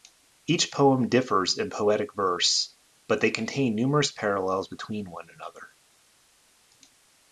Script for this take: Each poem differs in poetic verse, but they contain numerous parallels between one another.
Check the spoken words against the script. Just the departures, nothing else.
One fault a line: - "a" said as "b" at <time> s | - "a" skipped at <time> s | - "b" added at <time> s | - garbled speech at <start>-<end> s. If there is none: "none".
none